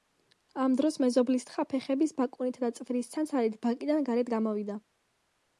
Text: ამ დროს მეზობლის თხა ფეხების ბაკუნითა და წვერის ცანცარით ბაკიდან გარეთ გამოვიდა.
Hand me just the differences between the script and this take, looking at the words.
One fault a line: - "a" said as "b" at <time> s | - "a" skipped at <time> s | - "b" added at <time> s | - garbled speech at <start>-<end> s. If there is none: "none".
none